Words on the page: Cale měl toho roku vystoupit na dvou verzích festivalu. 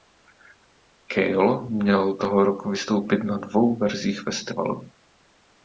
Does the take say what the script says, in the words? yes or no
yes